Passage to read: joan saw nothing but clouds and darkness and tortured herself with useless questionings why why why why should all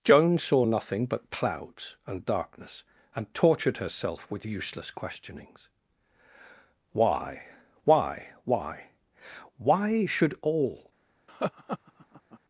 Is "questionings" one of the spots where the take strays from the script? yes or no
no